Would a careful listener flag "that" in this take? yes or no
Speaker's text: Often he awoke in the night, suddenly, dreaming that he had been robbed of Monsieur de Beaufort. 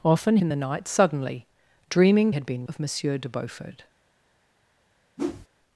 yes